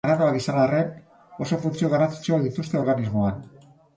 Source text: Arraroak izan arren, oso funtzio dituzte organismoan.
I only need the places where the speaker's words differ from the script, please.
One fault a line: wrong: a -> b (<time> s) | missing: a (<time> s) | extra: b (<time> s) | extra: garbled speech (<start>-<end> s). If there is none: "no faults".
extra: garrantzitsuak (1.9 s)